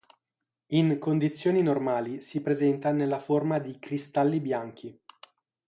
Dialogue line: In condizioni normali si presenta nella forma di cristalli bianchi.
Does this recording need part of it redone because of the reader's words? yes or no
no